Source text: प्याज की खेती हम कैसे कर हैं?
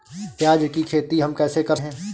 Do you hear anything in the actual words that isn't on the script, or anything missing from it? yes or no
no